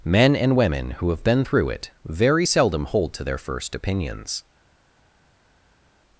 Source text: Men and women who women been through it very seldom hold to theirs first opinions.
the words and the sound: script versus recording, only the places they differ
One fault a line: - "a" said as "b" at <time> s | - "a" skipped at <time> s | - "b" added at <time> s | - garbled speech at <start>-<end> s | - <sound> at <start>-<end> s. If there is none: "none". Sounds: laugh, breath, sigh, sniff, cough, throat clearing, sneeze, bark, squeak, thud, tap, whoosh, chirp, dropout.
- "women" said as "have" at 1.1 s
- "theirs" said as "their" at 3.2 s